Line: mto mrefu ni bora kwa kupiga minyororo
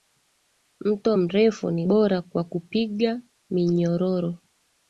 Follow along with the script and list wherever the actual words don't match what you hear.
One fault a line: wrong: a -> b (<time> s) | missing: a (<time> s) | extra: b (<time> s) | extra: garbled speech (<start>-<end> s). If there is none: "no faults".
no faults